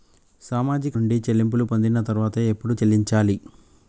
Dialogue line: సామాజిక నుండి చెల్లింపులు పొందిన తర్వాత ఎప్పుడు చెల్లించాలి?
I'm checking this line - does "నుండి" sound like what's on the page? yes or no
yes